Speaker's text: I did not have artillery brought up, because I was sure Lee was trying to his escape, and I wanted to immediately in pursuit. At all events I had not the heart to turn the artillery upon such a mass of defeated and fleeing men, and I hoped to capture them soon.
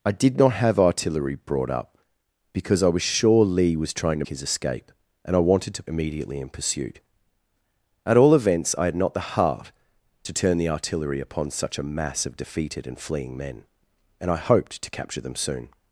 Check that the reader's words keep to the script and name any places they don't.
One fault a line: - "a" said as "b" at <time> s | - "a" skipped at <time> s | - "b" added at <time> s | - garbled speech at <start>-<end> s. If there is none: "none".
none